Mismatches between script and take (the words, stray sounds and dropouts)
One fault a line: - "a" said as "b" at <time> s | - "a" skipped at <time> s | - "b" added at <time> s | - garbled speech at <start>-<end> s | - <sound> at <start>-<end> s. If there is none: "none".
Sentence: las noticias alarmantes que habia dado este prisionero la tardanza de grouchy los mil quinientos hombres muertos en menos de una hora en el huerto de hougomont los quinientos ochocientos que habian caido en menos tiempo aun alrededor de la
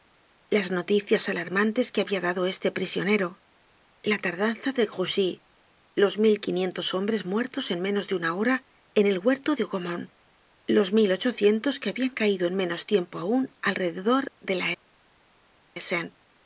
- "quinientos" said as "mil" at 11.0 s